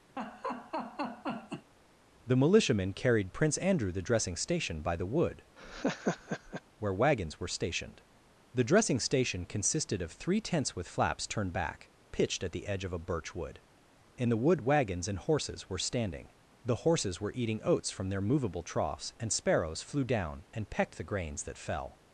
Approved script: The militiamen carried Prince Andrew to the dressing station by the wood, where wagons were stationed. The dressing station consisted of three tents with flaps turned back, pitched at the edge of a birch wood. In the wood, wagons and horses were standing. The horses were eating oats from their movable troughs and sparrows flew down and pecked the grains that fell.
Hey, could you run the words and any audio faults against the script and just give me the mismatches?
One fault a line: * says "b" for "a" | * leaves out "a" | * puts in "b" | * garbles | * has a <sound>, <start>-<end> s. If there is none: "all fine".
* has a laugh, 0.2-1.7 s
* leaves out "to"
* has a laugh, 5.6-6.6 s